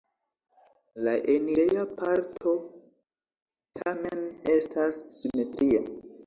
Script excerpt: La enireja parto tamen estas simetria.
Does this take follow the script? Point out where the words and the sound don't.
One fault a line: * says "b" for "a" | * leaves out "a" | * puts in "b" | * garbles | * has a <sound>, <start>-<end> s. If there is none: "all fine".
all fine